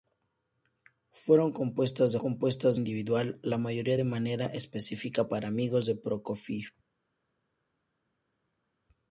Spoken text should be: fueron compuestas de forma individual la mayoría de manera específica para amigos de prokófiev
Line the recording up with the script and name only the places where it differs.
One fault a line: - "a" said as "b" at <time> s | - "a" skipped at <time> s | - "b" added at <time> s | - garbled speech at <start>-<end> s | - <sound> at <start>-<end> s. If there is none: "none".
- "forma" said as "compuestas" at 2.2 s